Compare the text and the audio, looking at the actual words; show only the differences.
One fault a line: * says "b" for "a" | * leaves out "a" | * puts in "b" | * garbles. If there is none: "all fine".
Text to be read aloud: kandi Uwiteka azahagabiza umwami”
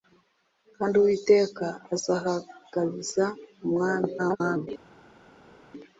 * garbles